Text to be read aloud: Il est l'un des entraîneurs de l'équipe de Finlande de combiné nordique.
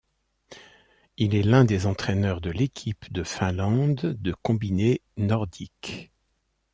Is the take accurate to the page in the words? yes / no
yes